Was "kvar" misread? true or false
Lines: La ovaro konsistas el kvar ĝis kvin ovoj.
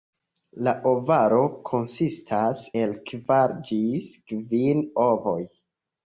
false